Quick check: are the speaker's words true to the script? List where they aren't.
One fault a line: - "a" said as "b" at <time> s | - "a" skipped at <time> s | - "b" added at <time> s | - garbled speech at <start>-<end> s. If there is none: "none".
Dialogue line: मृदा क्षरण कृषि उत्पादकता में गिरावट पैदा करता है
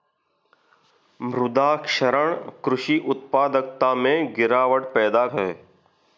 - "करता" skipped at 5.2 s